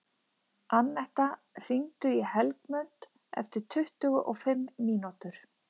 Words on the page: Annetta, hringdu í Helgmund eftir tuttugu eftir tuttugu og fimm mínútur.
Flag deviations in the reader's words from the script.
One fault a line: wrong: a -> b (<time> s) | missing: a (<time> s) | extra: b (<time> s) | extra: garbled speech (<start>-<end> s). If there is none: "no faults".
missing: eftir tuttugu (4.2 s)